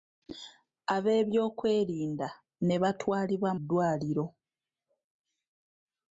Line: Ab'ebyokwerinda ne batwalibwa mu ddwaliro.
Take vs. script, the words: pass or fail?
fail